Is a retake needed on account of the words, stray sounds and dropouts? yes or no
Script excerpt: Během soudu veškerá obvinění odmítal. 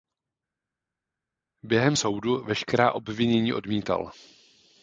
no